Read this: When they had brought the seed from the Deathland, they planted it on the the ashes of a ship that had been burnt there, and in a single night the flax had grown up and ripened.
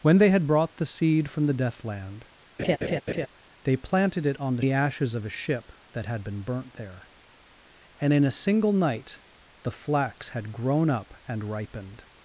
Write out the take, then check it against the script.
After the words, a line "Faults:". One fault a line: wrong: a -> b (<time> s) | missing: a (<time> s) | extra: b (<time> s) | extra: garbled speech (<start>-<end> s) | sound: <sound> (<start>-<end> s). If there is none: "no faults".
When they had brought the seed from the Deathland, they planted it on the the ashes of a ship that had been burnt there, and in a single night the flax had grown up and ripened.
Faults:
sound: laugh (2.6-3.3 s)